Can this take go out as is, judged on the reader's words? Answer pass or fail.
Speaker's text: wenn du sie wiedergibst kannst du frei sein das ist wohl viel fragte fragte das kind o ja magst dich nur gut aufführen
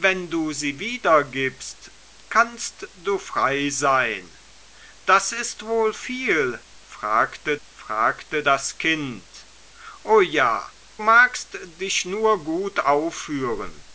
pass